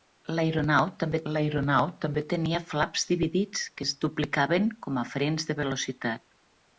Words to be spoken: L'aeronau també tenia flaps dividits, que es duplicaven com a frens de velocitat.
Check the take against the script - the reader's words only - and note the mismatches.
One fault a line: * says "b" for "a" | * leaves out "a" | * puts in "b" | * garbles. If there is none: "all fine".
* puts in "l'aeronau també"